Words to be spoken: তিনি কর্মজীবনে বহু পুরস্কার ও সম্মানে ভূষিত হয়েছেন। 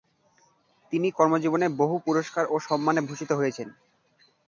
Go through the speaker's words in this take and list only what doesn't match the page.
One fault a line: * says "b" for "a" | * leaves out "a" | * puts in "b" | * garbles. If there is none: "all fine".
all fine